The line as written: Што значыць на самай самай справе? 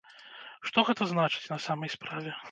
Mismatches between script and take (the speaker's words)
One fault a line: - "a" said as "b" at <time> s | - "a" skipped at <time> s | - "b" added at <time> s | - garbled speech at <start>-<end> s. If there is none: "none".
- "гэта" added at 0.9 s
- "самай" skipped at 1.9 s